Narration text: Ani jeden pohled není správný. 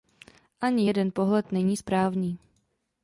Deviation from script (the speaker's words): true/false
false